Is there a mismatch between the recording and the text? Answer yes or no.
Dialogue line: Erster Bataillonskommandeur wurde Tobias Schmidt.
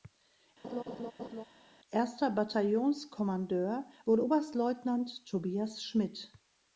yes